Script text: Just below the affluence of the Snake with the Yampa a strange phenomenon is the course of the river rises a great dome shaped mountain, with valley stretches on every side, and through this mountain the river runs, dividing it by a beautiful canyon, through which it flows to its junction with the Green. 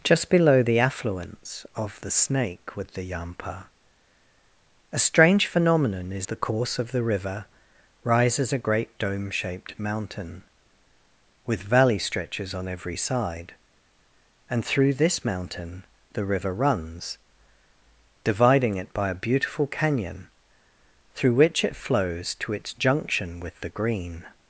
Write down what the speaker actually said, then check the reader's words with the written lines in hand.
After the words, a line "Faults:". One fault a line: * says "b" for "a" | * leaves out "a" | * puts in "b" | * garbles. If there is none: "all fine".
Just below the affluence of the Snake with the Yampa a strange phenomenon is the course of the river rises a great dome shaped mountain, with valley stretches on every side, and through this mountain the river runs, dividing it by a beautiful canyon, through which it flows to its junction with the Green.
Faults:
all fine